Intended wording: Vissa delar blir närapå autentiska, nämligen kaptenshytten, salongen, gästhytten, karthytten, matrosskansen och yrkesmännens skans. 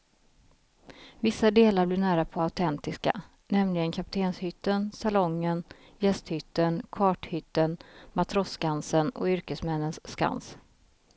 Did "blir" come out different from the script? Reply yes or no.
no